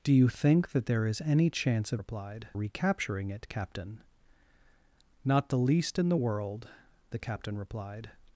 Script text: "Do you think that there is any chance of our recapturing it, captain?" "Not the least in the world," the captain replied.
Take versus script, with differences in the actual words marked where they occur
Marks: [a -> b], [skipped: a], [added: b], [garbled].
"Do you think that there is any chance of [our -> replied] recapturing it, captain?" "Not the least in the world," the captain replied.